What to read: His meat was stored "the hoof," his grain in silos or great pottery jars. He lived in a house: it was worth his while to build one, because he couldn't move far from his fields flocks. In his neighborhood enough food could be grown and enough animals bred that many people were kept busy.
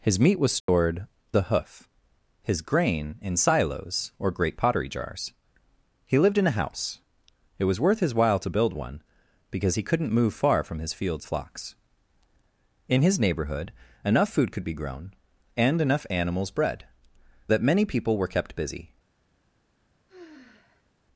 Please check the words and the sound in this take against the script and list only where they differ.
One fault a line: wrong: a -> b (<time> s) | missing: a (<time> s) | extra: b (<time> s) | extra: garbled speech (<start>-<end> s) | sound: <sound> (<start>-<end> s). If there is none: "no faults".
sound: dropout (0.6-0.7 s)
sound: sigh (20.1-20.9 s)